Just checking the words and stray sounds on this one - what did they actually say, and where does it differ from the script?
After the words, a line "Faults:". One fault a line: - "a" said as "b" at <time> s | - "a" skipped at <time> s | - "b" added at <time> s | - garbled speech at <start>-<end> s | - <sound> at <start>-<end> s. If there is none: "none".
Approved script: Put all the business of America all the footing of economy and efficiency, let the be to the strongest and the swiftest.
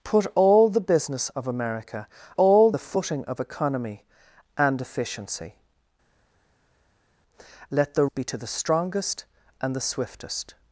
Put all the business of America all the footing of economy and efficiency, let the be to the strongest and the swiftest.
Faults:
none